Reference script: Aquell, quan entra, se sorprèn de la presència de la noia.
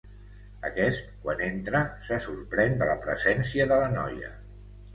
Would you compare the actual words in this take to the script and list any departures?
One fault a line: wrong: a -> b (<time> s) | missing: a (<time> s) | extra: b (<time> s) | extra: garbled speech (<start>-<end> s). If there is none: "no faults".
wrong: Aquell -> Aquest (0.7 s)